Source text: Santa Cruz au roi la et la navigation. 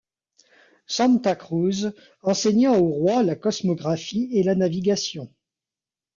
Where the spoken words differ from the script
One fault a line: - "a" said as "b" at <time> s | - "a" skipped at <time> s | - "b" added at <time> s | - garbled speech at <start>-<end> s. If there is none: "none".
- "enseigna" added at 2.2 s
- "cosmographie" added at 3.4 s